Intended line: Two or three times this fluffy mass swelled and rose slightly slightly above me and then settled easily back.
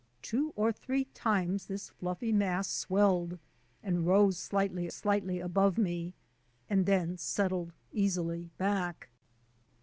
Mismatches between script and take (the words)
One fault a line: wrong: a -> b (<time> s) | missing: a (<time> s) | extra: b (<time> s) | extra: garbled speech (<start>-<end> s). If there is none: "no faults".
no faults